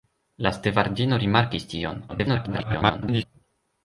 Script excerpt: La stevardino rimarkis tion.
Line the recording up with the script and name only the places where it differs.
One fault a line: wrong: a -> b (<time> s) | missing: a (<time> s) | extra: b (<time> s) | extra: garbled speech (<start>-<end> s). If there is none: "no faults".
extra: garbled speech (2.1-3.3 s)